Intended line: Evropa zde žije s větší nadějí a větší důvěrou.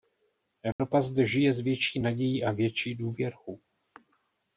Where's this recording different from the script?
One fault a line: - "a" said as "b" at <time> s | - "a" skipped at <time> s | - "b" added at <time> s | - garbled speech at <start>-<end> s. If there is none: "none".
none